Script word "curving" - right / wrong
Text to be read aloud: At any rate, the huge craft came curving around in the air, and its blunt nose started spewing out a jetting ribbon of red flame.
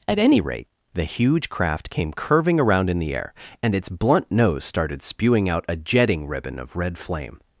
right